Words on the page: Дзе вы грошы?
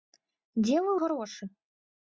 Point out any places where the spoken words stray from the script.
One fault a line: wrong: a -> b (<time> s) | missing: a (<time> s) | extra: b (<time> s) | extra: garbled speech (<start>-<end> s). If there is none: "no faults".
no faults